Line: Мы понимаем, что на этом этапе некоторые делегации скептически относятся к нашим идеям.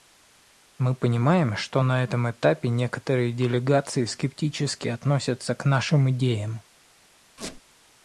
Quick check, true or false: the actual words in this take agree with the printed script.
true